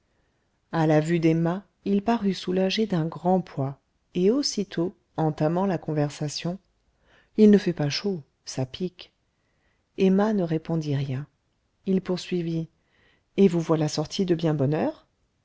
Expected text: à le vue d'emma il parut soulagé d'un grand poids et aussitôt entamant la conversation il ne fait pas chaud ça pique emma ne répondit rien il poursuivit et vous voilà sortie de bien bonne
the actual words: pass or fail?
fail